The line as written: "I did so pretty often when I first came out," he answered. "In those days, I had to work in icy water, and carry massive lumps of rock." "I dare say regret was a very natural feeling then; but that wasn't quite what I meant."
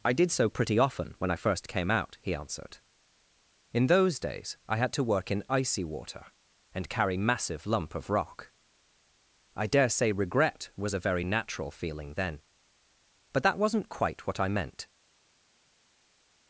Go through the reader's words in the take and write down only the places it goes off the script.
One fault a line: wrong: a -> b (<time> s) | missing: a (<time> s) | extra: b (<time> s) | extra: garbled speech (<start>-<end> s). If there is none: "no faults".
wrong: lumps -> lump (7.7 s)